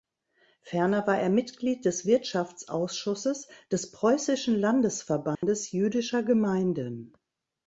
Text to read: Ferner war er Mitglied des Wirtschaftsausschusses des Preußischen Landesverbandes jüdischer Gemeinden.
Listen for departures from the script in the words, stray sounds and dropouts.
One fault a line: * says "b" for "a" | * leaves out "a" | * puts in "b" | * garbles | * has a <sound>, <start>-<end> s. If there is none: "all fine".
* has a dropout, 5.4-5.4 s